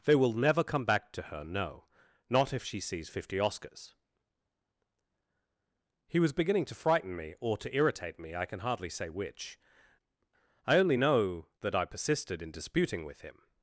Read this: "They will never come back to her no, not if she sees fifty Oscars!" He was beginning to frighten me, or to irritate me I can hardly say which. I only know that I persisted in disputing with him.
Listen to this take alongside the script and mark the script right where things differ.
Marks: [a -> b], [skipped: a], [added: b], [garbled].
"They will never come back to her no, not if she sees fifty Oscars!" He was beginning to frighten me, or to irritate me I can hardly say which. I only know that I persisted in disputing with him.